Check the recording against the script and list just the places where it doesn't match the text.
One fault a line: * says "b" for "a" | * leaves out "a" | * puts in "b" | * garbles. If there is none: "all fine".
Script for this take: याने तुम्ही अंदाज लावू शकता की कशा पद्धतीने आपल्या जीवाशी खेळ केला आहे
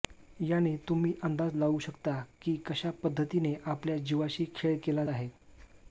all fine